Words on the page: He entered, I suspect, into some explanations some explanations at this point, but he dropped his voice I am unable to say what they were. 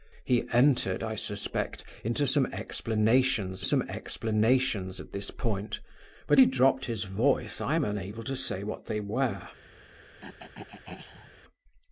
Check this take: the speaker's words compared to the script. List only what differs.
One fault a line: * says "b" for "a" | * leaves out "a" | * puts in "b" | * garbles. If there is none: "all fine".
all fine